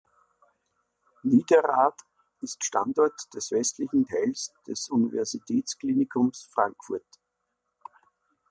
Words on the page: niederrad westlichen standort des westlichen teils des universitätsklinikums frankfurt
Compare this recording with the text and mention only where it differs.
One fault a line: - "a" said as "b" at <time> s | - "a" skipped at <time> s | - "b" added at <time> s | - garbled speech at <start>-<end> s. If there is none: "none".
- "westlichen" said as "ist" at 2.4 s